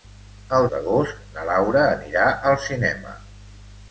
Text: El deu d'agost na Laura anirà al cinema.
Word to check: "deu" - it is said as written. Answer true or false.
false